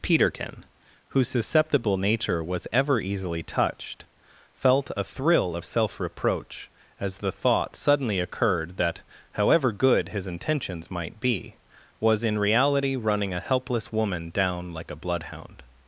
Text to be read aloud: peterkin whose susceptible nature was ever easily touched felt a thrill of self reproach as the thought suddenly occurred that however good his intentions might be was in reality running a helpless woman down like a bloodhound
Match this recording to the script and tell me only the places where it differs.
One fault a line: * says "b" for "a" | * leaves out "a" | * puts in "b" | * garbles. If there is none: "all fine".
all fine